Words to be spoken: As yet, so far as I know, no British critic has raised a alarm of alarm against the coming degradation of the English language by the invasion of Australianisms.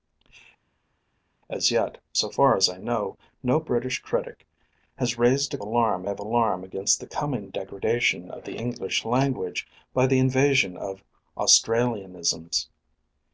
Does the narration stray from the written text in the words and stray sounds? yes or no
no